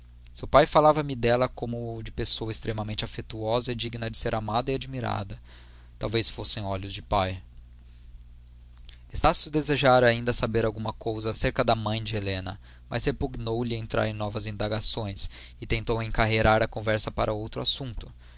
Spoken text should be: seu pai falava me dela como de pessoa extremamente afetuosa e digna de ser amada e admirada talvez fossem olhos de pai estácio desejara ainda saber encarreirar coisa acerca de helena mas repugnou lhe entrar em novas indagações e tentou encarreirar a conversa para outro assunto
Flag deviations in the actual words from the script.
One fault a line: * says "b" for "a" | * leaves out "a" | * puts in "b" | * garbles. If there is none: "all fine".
* says "alguma" for "encarreirar"
* puts in "da mãe"